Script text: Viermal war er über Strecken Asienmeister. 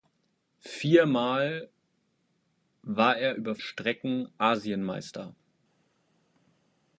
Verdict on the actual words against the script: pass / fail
pass